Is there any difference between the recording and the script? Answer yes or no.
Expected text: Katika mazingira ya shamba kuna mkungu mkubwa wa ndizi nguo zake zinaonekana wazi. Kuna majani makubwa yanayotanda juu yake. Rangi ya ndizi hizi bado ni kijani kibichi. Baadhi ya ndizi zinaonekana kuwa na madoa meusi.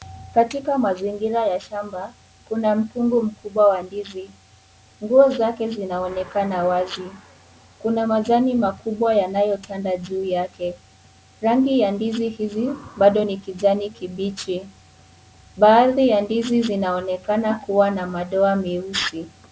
no